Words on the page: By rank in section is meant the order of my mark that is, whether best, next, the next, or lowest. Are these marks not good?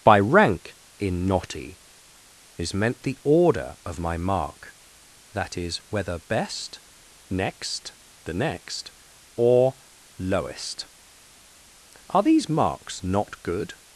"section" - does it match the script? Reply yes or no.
no